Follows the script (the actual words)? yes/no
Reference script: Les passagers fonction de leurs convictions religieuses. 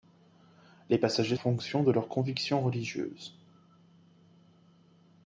yes